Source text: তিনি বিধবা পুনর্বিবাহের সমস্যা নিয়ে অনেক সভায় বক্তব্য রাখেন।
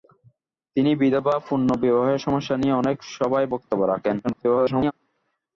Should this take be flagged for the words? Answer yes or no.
yes